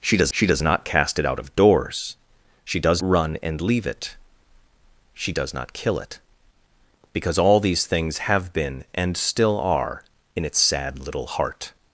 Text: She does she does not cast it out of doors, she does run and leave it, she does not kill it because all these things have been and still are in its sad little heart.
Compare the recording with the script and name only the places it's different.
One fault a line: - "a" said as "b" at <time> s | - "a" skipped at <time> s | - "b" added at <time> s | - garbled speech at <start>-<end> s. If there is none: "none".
none